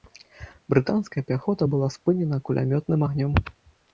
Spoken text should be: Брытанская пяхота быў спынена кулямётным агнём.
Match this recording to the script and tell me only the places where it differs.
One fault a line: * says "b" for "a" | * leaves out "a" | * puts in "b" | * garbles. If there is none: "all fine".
* says "была" for "быў"